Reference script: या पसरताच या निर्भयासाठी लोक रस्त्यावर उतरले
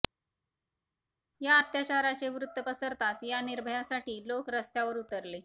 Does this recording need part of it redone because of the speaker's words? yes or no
yes